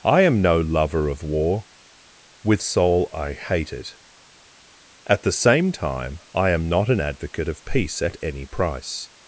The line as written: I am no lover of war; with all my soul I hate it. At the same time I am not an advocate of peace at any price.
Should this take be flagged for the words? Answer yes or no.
yes